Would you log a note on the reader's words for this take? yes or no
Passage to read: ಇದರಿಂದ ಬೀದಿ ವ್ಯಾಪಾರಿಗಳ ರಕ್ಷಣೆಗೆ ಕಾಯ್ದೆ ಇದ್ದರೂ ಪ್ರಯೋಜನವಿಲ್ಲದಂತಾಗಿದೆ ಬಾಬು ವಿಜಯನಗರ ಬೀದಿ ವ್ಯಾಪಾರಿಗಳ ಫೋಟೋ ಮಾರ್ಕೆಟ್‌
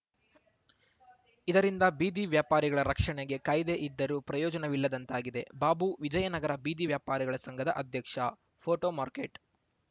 yes